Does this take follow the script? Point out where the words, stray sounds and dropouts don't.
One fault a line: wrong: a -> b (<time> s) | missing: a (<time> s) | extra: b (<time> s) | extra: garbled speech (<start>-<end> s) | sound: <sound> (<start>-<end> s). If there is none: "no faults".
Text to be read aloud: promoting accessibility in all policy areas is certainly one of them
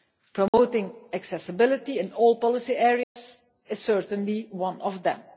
sound: dropout (0.5-0.5 s)
sound: dropout (3.0-3.2 s)